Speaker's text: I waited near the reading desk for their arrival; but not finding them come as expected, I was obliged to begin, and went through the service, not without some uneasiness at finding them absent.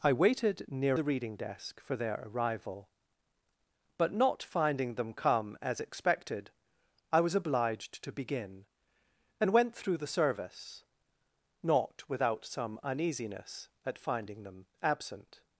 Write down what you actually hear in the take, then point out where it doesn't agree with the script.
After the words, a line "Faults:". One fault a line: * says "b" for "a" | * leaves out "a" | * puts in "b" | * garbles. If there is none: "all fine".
I waited near the reading desk for their arrival; but not finding them come as expected, I was obliged to begin, and went through the service, not without some uneasiness at finding them absent.
Faults:
all fine